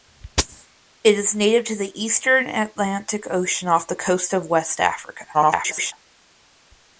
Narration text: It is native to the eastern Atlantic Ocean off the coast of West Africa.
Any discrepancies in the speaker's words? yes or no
yes